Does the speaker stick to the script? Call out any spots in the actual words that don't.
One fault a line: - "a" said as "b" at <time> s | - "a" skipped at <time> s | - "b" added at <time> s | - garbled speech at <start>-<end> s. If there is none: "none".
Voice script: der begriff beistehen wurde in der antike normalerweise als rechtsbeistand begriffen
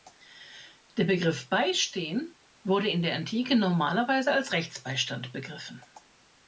none